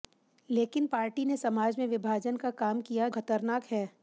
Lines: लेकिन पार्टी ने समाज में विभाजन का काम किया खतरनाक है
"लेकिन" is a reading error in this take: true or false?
false